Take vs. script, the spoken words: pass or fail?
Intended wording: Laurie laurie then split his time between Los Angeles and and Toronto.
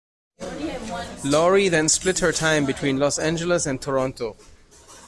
fail